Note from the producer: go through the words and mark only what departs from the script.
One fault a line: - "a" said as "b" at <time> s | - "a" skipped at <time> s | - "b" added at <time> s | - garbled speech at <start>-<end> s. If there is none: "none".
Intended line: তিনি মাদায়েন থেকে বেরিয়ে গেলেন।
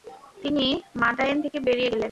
none